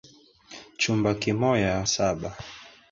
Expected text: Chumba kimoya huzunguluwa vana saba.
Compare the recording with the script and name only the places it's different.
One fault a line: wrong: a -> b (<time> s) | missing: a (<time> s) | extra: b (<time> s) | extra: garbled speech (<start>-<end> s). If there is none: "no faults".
missing: huzunguluwa vana (1.8 s)